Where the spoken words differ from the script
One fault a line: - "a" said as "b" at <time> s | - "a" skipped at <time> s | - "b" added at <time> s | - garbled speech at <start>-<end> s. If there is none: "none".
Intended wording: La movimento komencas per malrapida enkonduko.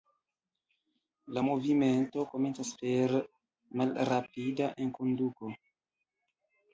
none